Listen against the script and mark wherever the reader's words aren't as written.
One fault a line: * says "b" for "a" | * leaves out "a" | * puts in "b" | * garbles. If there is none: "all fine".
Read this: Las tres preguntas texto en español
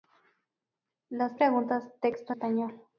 * leaves out "tres"
* leaves out "en"